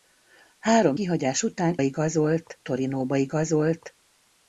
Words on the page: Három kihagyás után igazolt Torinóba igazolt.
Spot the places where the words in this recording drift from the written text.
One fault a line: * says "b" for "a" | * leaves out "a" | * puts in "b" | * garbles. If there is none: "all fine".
all fine